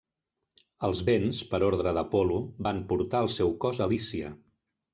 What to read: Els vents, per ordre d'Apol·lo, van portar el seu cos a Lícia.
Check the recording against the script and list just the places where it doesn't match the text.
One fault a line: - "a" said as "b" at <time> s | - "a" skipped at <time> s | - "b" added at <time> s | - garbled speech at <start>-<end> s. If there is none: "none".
none